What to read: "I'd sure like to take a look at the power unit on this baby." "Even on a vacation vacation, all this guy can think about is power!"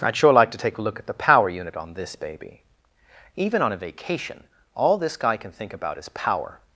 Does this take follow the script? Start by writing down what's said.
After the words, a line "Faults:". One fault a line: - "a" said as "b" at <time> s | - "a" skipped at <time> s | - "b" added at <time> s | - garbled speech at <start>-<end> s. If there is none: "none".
"I'd sure like to take a look at the power unit on this baby." "Even on a vacation, all this guy can think about is power!"
Faults:
- "vacation" skipped at 4.5 s